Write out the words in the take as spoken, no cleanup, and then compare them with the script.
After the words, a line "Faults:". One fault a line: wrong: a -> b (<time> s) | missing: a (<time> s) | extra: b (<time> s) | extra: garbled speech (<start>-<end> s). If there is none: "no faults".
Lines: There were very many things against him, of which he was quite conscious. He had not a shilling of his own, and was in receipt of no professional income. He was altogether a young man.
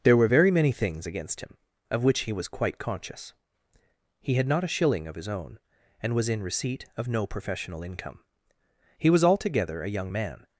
There were very many things against him, of which he was quite conscious. He had not a shilling of his own, and was in receipt of no professional income. He was altogether a young man.
Faults:
no faults